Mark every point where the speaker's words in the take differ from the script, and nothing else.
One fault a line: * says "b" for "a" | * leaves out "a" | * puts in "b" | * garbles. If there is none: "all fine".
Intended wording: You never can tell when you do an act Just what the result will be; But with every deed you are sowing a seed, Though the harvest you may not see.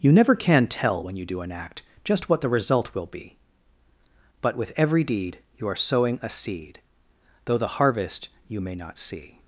all fine